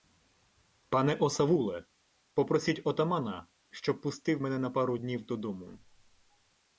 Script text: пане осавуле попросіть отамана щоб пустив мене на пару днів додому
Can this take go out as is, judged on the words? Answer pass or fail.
pass